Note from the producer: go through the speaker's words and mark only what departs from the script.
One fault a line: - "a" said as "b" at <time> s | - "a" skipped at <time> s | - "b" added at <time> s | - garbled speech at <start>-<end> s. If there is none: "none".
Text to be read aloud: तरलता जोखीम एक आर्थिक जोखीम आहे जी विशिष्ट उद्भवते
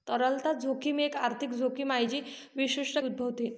none